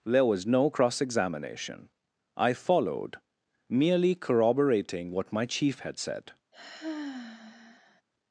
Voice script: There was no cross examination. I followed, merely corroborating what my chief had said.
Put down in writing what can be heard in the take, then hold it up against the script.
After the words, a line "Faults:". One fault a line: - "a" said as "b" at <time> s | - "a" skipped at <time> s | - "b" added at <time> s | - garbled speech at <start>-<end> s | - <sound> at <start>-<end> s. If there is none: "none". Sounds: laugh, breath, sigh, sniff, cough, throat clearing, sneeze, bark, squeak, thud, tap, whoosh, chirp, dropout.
There was no cross examination. I followed, merely corroborating what my chief had said.
Faults:
- sigh at 6.5-8.0 s